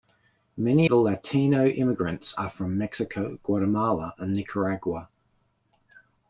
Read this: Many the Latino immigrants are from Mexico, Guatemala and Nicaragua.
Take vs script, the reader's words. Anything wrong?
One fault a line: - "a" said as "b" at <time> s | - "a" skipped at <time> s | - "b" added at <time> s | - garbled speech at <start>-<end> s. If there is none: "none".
none